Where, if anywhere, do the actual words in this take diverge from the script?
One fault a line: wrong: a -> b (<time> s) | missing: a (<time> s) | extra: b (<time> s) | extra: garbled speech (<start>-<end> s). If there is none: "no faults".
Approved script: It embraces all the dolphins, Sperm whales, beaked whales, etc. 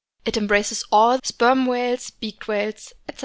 missing: the dolphins (1.2 s)